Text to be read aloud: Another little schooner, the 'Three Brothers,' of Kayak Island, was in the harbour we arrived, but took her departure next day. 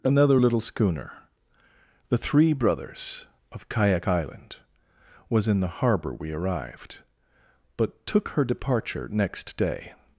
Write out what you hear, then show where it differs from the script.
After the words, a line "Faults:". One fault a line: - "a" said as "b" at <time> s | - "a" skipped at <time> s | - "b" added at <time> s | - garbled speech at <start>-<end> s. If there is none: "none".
Another little schooner, the 'Three Brothers,' of Kayak Island, was in the harbour we arrived, but took her departure next day.
Faults:
none